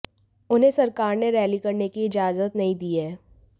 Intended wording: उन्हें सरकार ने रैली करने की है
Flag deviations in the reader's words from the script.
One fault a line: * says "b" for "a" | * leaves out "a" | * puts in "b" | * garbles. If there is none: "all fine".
* puts in "इजाजत नहीं दी"